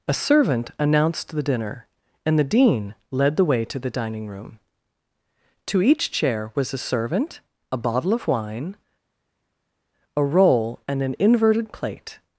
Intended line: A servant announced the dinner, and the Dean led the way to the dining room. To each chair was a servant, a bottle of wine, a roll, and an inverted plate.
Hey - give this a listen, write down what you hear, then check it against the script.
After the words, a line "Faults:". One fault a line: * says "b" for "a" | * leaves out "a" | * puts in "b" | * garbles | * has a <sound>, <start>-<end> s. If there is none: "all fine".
A servant announced the dinner, and the Dean led the way to the dining room. To each chair was a servant, a bottle of wine, a roll, and an inverted plate.
Faults:
all fine